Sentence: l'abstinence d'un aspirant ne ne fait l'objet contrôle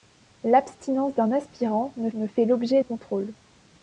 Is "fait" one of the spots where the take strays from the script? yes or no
no